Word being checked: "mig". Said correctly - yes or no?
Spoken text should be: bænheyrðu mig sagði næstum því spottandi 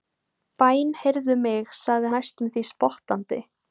yes